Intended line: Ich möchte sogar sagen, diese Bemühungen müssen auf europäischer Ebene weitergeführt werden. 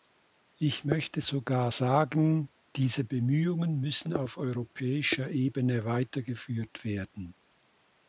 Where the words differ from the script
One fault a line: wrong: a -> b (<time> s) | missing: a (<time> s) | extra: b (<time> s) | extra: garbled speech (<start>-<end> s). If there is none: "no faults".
no faults